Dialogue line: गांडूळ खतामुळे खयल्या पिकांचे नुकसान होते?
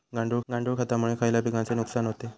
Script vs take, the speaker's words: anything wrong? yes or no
yes